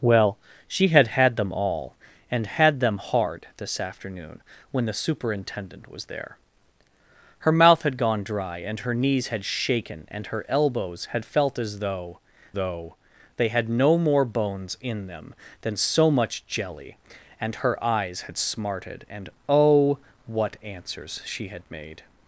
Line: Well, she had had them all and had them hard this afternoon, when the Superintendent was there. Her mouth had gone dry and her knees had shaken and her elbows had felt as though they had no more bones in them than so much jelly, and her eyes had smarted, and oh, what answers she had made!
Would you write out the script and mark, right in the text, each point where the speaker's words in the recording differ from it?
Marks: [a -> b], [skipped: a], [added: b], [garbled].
Well, she had had them all and had them hard this afternoon, when the Superintendent was there. Her mouth had gone dry and her knees had shaken and her elbows had felt as though [added: though] they had no more bones in them than so much jelly, and her eyes had smarted, and oh, what answers she had made!